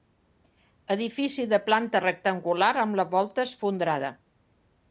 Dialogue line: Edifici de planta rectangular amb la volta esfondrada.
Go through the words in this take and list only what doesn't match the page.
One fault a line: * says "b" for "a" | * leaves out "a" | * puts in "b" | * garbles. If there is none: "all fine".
all fine